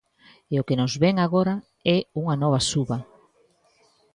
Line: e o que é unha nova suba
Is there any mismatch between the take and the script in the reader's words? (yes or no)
yes